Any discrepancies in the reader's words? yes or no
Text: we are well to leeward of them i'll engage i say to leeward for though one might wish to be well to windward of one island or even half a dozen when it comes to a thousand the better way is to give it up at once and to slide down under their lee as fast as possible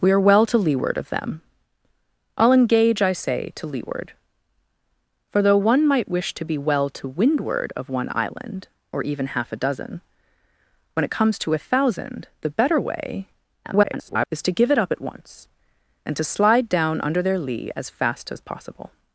yes